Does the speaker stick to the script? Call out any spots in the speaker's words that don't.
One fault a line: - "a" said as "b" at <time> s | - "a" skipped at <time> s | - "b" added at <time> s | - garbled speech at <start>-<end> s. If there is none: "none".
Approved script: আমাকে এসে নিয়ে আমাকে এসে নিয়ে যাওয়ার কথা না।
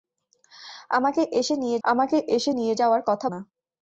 none